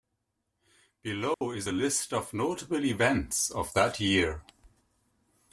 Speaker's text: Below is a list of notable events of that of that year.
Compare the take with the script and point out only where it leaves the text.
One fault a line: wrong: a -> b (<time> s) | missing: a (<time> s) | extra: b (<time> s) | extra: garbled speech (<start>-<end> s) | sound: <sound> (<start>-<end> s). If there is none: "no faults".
sound: dropout (1.3-1.4 s)
missing: of that (4.0 s)